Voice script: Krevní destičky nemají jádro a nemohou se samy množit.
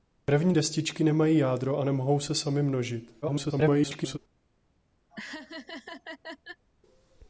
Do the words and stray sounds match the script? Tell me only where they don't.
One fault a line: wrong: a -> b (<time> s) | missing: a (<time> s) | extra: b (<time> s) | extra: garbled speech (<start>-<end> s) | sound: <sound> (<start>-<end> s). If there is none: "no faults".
extra: garbled speech (3.2-4.2 s)
sound: laugh (5.1-6.6 s)